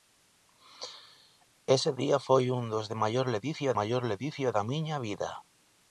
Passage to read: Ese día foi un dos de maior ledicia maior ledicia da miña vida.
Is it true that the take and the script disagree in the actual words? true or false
false